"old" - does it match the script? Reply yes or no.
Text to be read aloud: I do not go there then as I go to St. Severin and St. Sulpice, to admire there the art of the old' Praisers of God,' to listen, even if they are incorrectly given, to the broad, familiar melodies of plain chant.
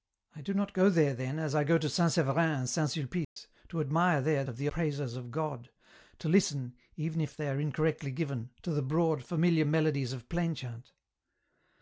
no